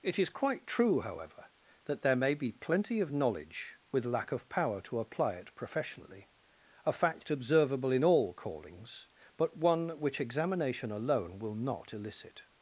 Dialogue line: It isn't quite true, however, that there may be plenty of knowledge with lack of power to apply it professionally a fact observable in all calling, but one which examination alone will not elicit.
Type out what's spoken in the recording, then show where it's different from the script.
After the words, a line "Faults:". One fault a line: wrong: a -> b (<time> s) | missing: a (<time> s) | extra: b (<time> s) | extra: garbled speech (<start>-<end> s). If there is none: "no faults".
It is quite true, however, that there may be plenty of knowledge with lack of power to apply it professionally a fact observable in all callings, but one which examination alone will not elicit.
Faults:
wrong: isn't -> is (0.2 s)
wrong: calling -> callings (8.3 s)